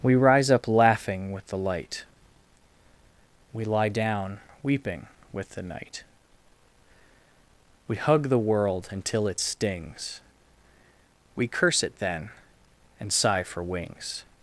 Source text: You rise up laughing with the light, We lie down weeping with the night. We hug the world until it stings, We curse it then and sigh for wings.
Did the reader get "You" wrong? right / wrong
wrong